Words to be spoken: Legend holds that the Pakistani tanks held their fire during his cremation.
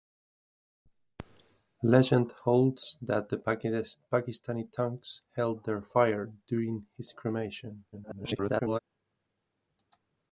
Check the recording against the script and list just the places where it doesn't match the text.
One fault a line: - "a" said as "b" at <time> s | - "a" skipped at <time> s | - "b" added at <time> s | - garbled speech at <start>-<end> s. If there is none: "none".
- garbled speech at 7.9-8.8 s